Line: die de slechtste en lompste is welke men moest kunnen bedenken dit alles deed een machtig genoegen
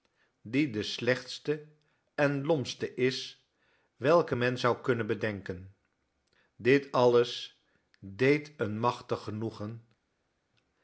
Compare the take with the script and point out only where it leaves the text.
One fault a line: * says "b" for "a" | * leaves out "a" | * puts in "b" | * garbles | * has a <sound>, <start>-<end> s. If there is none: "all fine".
* says "zou" for "moest"